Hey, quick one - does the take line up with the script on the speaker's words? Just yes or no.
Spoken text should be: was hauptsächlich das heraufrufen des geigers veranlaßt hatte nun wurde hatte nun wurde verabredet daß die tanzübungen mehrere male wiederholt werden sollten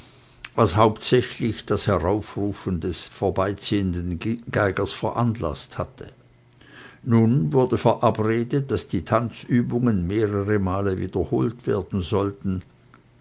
no